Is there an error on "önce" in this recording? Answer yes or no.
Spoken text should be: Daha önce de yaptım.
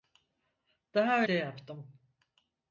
yes